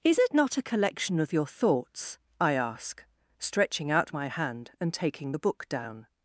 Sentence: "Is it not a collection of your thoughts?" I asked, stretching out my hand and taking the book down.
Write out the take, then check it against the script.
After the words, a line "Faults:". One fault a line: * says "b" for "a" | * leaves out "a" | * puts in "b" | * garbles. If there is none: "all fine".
"Is it not a collection of your thoughts?" I ask, stretching out my hand and taking the book down.
Faults:
* says "ask" for "asked"